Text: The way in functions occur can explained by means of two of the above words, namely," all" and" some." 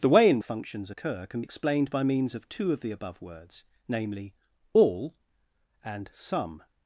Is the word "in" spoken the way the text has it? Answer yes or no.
yes